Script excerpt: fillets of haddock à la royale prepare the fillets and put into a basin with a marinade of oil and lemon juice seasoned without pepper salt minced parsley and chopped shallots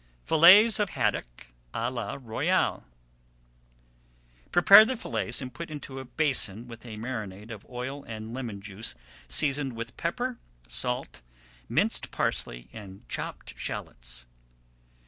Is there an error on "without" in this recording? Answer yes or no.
yes